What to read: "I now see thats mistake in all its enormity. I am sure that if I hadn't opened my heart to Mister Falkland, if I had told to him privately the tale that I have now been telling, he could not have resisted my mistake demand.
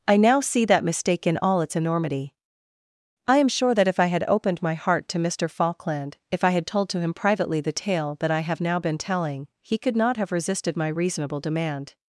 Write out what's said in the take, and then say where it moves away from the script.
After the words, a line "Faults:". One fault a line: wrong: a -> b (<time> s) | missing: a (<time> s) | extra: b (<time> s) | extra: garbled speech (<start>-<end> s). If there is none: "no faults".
"I now see that mistake in all its enormity. I am sure that if I had opened my heart to Mister Falkland, if I had told to him privately the tale that I have now been telling, he could not have resisted my reasonable demand.
Faults:
wrong: thats -> that (0.7 s)
wrong: hadn't -> had (4.1 s)
wrong: mistake -> reasonable (10.9 s)